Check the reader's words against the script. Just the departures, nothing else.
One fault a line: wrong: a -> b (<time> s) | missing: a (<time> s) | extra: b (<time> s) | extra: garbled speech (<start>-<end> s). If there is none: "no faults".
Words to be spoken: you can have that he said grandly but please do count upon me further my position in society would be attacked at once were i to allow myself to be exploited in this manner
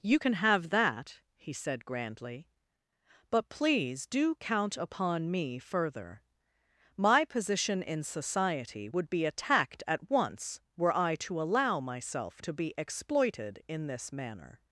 no faults